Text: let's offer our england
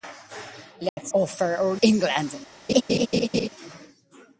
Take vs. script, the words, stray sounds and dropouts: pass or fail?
fail